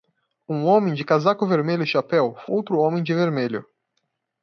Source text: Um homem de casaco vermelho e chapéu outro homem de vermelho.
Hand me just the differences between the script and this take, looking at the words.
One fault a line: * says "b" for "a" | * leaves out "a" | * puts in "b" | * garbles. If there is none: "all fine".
all fine